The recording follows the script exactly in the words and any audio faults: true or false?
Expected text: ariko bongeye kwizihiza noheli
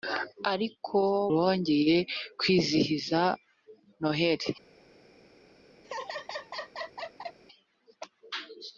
false